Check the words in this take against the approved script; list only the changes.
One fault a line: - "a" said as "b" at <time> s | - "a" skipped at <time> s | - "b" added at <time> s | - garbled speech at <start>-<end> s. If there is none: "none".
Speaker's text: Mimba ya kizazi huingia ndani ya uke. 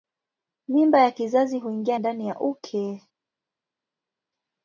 none